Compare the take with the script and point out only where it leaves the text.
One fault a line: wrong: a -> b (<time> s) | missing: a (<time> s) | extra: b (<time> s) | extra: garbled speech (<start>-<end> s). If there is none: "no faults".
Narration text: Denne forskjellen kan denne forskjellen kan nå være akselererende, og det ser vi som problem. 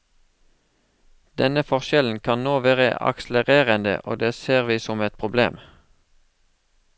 missing: denne forskjellen kan (2.4 s)
extra: et (5.1 s)